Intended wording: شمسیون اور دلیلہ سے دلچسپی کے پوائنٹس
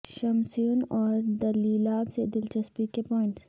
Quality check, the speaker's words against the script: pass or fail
pass